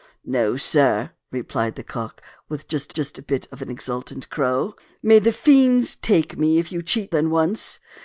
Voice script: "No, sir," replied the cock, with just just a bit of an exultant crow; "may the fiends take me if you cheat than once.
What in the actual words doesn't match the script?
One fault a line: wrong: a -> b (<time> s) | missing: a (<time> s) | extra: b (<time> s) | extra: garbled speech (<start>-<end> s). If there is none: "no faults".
no faults